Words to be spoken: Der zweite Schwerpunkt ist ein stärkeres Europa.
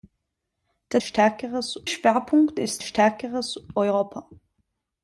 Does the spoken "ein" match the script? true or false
false